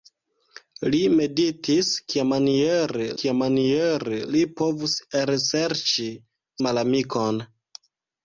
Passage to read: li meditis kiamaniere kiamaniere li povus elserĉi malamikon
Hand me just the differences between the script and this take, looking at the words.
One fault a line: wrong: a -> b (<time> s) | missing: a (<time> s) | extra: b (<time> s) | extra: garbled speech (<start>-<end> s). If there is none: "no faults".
no faults